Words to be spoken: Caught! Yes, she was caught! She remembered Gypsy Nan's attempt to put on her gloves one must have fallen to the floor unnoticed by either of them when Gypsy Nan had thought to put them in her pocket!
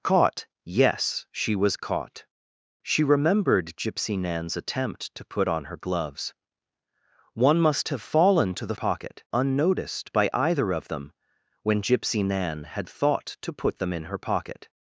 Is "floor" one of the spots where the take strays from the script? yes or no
yes